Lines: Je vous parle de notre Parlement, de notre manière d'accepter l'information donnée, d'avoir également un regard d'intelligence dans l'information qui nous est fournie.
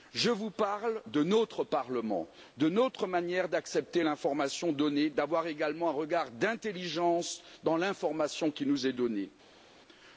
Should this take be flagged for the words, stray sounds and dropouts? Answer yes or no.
no